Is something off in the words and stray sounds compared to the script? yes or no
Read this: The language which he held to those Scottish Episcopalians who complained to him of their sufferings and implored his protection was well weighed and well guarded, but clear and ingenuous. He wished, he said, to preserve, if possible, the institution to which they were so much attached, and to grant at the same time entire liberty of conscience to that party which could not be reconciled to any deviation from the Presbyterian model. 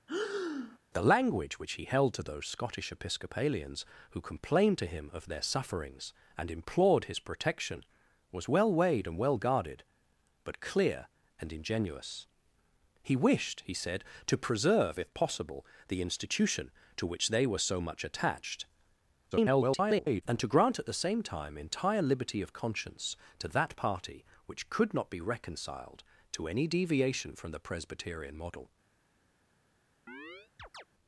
yes